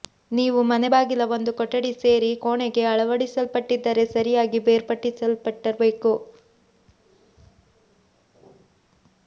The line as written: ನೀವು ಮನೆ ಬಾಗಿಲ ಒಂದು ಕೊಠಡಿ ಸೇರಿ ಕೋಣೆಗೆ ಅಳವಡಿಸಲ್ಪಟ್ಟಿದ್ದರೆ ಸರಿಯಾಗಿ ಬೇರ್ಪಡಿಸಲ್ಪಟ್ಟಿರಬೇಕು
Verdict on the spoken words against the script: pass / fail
pass